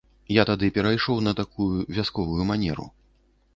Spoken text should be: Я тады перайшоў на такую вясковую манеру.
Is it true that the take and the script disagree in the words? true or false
false